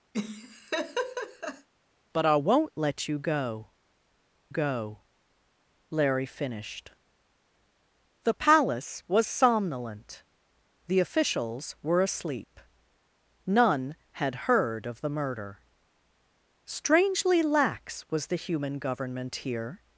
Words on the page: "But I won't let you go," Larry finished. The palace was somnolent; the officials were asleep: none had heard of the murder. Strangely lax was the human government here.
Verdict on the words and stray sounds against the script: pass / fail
fail